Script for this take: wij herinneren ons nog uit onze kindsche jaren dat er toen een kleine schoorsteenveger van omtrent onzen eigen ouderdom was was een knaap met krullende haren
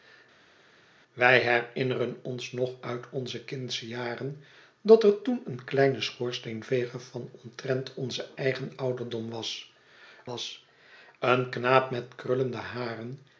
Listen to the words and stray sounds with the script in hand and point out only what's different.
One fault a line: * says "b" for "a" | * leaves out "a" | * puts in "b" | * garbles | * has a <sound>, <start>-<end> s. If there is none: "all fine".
all fine